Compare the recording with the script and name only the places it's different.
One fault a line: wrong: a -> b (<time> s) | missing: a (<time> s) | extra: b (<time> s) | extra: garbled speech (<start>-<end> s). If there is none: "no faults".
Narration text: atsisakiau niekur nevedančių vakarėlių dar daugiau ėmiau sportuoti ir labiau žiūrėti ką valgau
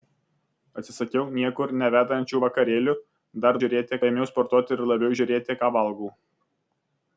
wrong: daugiau -> žiūrėti (3.6 s)